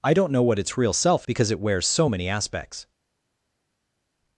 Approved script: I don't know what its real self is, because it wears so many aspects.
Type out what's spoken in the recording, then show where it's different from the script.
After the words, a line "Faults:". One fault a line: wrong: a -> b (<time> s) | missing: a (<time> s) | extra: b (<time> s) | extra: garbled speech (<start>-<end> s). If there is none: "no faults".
I don't know what its real self because it wears so many aspects.
Faults:
missing: is (1.3 s)